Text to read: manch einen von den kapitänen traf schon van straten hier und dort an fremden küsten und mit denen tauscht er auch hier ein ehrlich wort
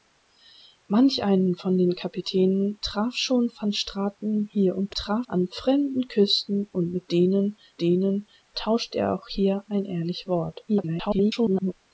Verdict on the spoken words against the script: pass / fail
fail